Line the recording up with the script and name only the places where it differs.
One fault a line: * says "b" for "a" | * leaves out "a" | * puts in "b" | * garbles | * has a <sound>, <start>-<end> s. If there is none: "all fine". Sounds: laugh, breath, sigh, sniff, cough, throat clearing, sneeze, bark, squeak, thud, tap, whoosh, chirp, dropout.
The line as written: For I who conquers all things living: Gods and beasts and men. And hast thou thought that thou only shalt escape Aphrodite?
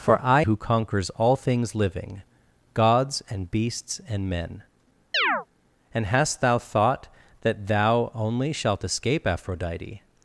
* has a chirp, 5.1-5.5 s